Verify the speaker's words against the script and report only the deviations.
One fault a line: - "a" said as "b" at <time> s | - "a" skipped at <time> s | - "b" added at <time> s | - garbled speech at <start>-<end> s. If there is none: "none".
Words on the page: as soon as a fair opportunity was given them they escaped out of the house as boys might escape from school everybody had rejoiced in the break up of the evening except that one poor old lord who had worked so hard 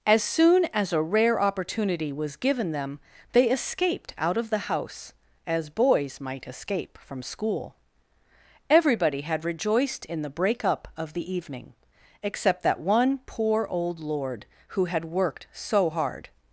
- "fair" said as "rare" at 1.0 s